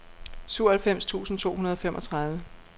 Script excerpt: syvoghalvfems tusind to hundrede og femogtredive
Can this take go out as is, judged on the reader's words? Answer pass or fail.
pass